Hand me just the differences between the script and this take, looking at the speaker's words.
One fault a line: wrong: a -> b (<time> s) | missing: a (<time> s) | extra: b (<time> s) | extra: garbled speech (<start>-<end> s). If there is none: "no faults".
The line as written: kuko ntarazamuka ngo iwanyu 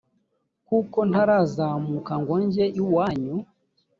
extra: njye (2.4 s)